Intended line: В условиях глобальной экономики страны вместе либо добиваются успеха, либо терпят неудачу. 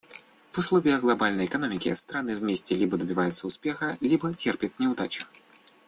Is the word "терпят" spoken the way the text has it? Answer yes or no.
yes